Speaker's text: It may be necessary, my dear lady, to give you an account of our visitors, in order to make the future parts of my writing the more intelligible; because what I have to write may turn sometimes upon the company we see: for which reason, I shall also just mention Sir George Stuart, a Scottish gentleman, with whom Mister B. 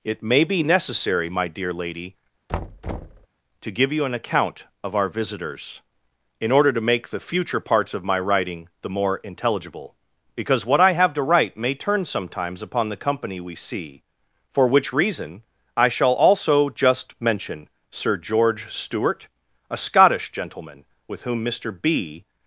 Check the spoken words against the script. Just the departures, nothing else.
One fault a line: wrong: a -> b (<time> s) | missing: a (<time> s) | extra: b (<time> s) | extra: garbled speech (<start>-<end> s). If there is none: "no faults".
no faults